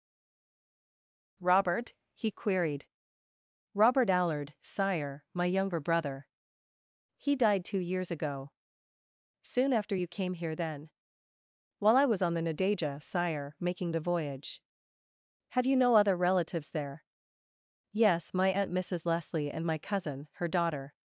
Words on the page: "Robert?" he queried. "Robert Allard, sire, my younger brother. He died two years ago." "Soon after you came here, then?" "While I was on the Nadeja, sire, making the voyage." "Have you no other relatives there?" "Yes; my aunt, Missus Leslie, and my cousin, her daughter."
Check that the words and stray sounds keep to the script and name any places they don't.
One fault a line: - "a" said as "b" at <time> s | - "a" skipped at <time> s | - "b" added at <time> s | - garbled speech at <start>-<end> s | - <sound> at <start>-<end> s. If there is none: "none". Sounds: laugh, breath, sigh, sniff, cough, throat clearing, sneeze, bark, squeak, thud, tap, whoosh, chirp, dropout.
none